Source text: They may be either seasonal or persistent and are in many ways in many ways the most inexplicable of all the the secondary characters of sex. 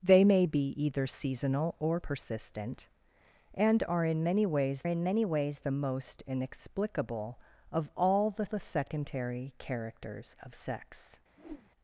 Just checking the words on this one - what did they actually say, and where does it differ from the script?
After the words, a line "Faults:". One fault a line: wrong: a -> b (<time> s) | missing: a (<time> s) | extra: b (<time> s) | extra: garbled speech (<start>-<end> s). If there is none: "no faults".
They may be either seasonal or persistent and are in many ways in many ways the most inexplicable of all the the secondary characters of sex.
Faults:
no faults